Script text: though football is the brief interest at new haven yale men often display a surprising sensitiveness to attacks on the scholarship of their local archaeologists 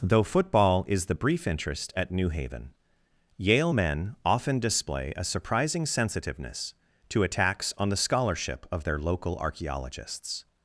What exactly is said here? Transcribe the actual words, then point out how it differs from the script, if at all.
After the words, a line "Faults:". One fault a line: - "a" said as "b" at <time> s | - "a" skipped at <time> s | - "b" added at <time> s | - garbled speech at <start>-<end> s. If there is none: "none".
though football is the brief interest at new haven yale men often display a surprising sensitiveness to attacks on the scholarship of their local archaeologists
Faults:
none